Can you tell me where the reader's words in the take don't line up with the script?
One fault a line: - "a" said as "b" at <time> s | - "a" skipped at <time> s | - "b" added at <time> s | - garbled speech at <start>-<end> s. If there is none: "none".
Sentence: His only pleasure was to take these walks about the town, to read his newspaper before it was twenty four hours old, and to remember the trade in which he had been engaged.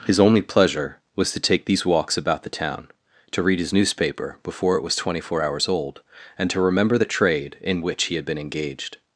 none